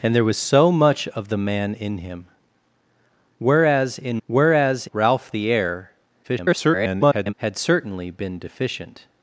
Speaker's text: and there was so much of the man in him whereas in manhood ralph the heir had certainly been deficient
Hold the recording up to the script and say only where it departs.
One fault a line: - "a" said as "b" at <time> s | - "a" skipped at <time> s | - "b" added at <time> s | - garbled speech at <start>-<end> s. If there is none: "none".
- "manhood" said as "whereas" at 4.3 s
- garbled speech at 6.2-7.3 s